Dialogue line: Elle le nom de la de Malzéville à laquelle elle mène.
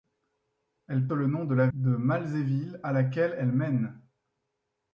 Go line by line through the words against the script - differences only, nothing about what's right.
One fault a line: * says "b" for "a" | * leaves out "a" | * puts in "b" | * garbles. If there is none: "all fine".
all fine